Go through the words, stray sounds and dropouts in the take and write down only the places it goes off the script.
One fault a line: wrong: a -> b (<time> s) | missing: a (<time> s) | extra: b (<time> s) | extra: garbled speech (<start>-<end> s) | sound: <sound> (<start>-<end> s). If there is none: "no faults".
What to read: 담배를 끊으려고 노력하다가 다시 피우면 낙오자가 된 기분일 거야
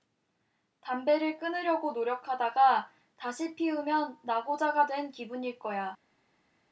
no faults